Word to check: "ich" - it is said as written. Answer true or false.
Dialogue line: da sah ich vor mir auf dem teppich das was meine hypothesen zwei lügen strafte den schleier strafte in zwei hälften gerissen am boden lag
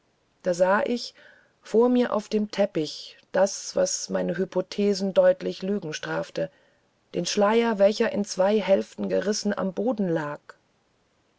true